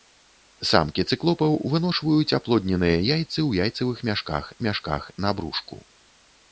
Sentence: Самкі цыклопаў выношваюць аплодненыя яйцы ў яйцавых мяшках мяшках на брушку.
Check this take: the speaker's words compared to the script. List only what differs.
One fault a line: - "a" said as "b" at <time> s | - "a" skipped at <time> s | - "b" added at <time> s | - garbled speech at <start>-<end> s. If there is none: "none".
none